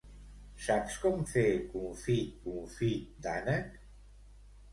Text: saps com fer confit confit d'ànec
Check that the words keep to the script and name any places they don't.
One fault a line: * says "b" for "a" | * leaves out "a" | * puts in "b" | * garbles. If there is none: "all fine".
all fine